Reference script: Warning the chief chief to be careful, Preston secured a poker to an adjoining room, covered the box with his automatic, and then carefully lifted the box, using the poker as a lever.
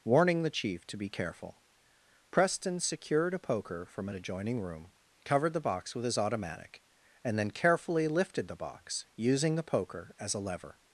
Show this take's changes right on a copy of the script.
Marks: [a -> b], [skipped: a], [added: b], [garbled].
Warning the chief [skipped: chief] to be careful, Preston secured a poker [to -> from] an adjoining room, covered the box with his automatic, and then carefully lifted the box, using the poker as a lever.